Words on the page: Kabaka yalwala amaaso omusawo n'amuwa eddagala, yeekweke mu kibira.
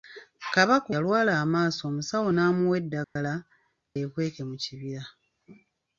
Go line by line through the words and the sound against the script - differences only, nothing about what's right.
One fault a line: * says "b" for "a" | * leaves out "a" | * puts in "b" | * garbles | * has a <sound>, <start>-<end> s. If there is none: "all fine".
* has a dropout, 3.0-3.2 s